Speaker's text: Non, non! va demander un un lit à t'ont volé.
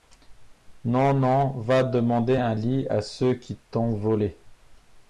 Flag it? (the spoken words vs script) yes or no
yes